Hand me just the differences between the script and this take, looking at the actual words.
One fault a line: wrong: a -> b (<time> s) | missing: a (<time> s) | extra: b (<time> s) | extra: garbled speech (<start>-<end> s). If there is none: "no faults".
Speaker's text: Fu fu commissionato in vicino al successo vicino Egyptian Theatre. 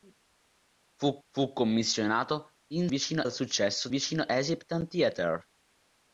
no faults